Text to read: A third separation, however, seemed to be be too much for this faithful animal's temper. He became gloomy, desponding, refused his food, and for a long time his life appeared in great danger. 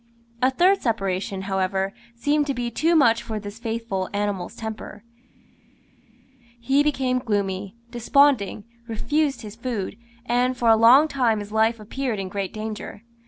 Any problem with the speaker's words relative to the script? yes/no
yes